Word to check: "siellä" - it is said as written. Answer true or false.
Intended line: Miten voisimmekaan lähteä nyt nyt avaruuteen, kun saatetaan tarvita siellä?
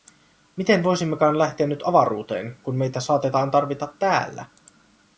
false